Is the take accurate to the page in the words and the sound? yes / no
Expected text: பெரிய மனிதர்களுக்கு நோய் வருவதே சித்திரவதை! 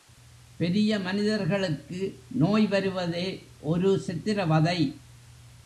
no